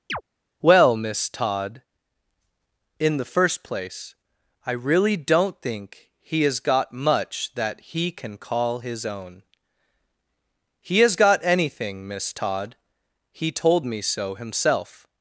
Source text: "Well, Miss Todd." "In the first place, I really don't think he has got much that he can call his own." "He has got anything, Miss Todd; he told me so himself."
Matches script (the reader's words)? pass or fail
pass